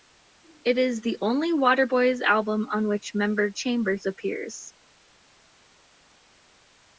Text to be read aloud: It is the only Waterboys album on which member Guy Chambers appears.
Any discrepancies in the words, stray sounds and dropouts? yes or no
yes